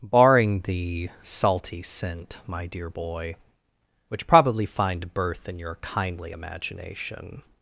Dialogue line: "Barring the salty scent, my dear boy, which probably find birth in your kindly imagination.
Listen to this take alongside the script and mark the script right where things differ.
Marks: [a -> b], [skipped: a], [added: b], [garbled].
"Barring the salty scent, my dear boy, which probably find birth in your kindly imagination.